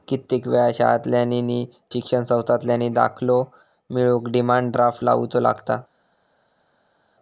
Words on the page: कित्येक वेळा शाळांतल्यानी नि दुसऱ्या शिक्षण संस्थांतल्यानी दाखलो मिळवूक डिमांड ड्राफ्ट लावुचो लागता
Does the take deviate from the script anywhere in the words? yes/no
yes